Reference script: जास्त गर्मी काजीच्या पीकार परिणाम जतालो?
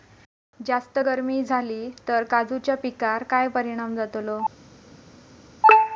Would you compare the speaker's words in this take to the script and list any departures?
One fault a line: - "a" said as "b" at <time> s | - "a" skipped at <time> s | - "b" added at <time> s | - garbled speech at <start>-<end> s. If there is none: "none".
- "जाली तर" added at 1.4 s
- "काय" added at 3.2 s